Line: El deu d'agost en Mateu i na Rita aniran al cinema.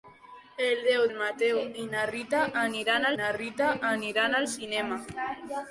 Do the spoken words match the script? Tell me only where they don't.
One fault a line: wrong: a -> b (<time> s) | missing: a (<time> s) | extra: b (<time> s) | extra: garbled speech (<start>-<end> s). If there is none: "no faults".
missing: d'agost (1.1 s)
extra: na Rita aniran (3.2 s)